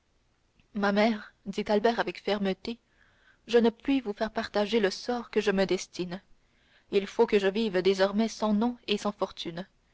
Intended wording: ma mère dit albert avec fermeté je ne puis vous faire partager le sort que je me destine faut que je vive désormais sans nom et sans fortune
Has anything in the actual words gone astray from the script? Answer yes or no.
yes